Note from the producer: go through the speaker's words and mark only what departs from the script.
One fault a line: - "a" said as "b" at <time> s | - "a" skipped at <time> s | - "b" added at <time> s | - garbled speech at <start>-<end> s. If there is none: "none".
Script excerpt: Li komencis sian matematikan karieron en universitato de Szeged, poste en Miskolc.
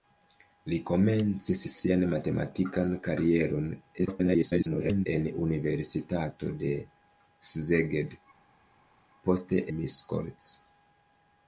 - garbled speech at 4.0-5.1 s
- "en" skipped at 9.6 s